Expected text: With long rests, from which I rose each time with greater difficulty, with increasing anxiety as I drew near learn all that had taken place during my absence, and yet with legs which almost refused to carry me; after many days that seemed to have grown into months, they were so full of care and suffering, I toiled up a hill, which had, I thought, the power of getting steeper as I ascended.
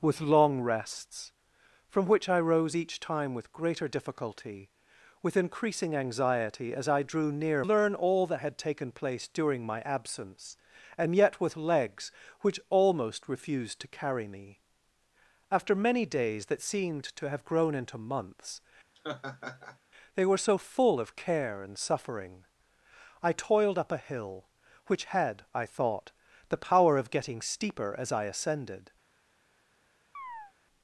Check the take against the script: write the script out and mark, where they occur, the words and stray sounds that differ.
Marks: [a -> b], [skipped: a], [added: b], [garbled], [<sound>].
With long rests, from which I rose each time with greater difficulty, with increasing anxiety as I drew near learn all that had taken place during my absence, and yet with legs which almost refused to carry me; after many days that seemed to have grown into months, [laugh] they were so full of care and suffering, I toiled up a hill, which had, I thought, the power of getting steeper as I ascended. [chirp]